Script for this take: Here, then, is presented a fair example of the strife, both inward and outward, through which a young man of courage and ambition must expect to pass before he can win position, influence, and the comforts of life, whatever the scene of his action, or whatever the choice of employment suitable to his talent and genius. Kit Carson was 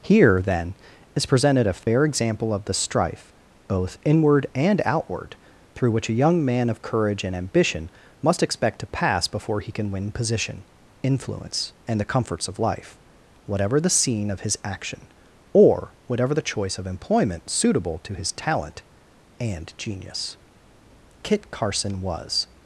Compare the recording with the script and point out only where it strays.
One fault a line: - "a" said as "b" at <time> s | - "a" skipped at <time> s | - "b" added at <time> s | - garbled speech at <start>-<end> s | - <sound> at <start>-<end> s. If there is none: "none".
- dropout at 1.8-1.9 s